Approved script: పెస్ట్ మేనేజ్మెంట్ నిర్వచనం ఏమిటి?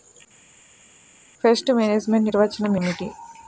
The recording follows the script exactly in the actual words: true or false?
true